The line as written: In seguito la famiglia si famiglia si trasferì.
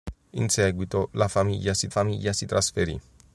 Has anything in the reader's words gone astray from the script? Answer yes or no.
no